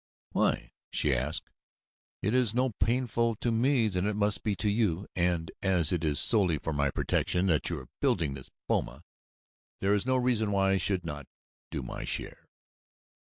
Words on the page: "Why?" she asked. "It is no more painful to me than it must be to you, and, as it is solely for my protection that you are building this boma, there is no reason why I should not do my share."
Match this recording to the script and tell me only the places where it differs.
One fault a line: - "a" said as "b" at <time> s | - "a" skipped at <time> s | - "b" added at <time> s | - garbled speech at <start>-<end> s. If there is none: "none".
none